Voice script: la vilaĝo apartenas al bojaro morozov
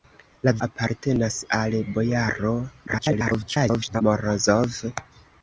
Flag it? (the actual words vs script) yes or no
yes